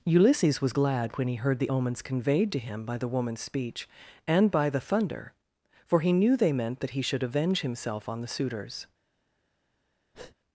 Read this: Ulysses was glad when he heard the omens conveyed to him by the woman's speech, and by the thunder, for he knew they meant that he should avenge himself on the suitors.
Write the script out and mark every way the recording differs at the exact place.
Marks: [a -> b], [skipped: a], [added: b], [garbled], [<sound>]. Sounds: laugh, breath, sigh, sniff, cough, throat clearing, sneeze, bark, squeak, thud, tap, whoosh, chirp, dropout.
Ulysses was glad when he heard the omens conveyed to him by the woman's speech, and by the thunder, for he knew they meant that he should avenge himself on the suitors. [breath]